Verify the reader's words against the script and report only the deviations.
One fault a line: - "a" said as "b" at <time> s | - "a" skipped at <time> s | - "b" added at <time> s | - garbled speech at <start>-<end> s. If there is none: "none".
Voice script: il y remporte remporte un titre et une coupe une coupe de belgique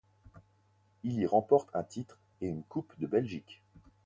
- "remporte" skipped at 1.7 s
- "une coupe" skipped at 3.0 s